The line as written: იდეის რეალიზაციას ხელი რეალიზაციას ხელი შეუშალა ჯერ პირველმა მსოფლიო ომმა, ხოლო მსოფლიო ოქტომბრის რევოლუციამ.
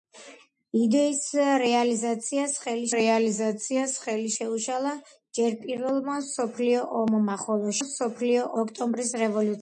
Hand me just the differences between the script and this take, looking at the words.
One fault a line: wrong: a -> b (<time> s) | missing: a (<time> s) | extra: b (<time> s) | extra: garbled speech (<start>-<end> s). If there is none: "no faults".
no faults